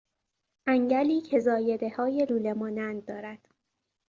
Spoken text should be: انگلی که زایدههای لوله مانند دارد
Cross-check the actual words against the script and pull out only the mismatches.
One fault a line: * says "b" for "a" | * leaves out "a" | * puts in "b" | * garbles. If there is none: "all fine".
all fine